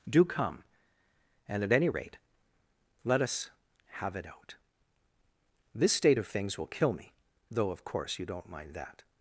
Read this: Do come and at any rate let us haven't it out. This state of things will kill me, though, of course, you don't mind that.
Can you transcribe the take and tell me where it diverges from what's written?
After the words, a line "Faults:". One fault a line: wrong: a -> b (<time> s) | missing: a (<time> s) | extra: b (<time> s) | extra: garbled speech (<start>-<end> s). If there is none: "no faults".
Do come and at any rate let us have it out. This state of things will kill me, though, of course, you don't mind that.
Faults:
wrong: haven't -> have (3.9 s)